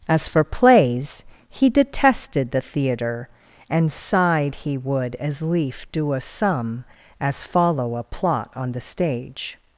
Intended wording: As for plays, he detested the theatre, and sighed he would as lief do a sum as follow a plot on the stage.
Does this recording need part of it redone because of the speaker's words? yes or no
no